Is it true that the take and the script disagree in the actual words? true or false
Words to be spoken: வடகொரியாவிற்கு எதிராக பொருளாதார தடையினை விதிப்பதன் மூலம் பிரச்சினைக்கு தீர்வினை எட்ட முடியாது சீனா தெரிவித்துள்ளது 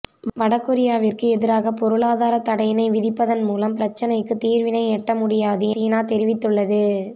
false